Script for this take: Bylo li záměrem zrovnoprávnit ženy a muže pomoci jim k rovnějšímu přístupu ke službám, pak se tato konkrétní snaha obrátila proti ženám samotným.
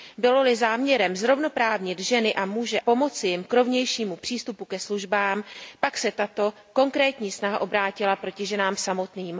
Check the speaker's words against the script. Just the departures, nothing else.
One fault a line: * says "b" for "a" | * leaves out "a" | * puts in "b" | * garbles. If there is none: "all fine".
all fine